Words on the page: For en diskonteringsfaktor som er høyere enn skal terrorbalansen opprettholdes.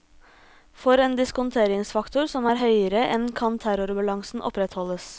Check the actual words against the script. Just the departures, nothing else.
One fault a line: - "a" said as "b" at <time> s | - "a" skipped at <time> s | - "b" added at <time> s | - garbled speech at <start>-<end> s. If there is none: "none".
- "skal" said as "kan" at 3.4 s